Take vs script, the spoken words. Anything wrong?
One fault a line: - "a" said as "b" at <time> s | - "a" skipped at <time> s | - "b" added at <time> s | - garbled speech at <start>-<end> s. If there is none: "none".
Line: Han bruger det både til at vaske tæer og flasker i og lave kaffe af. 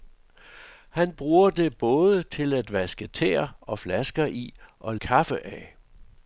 - "lave" skipped at 5.0 s